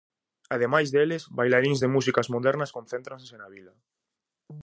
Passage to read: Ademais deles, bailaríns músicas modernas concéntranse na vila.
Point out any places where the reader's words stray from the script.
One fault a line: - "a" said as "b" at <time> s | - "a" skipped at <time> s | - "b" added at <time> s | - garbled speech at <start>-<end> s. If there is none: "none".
- "de" added at 1.8 s